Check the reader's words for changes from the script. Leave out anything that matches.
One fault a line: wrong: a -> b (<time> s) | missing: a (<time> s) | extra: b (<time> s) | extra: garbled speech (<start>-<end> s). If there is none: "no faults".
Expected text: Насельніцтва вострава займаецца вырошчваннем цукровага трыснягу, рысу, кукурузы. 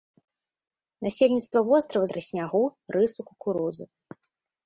missing: займаецца вырошчваннем цукровага (2.0 s)